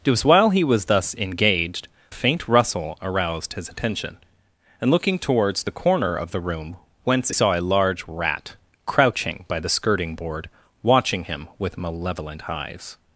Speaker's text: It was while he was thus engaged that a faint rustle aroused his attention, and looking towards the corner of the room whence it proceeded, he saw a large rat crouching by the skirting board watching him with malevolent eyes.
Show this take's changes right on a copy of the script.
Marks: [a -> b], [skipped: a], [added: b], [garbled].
It was while he was thus engaged [skipped: that] a faint rustle aroused his attention, and looking towards the corner of the room whence [skipped: it proceeded, he] saw a large rat crouching by the skirting board watching him with malevolent eyes.